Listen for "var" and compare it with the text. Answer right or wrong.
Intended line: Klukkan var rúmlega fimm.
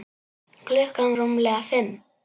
wrong